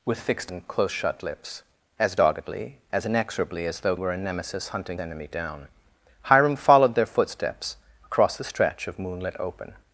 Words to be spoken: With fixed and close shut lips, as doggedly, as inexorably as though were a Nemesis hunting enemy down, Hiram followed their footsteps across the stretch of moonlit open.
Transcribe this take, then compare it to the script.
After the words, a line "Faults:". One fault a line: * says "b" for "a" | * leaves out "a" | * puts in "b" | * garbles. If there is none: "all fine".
With fixed and close shut lips, as doggedly, as inexorably as though were a Nemesis hunting enemy down, Hiram followed their footsteps across the stretch of moonlit open.
Faults:
all fine